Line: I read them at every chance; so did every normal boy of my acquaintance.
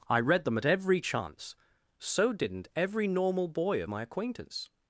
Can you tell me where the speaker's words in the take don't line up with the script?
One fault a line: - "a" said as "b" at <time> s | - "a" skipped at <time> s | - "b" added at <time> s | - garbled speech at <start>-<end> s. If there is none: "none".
- "did" said as "didn't" at 2.3 s